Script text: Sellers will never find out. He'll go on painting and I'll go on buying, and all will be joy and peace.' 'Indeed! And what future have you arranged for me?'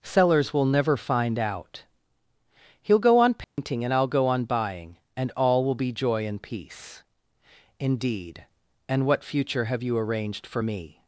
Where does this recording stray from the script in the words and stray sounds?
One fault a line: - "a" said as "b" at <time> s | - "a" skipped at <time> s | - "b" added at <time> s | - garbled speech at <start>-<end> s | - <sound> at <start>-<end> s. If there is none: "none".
- dropout at 3.4-3.6 s